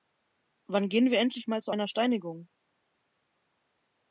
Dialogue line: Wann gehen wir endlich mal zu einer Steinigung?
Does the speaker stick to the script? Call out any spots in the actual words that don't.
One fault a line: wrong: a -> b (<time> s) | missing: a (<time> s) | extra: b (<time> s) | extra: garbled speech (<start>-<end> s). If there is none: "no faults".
no faults